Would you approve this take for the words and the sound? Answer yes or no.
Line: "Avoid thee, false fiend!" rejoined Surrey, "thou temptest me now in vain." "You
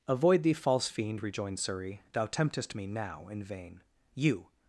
yes